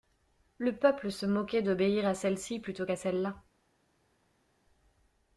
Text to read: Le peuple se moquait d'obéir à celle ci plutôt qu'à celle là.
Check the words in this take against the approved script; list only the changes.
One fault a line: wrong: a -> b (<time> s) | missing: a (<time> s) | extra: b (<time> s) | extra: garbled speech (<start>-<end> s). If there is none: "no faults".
no faults